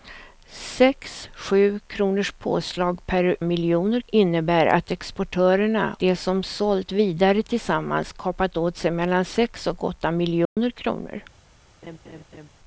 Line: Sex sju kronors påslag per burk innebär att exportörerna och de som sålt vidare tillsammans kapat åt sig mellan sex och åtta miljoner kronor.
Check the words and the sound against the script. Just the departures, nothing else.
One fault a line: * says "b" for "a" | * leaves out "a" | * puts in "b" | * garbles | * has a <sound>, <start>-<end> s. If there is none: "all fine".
* says "miljoner" for "burk"
* leaves out "och"
* has a dropout, 10.4-10.6 s
* has a laugh, 11.8-12.5 s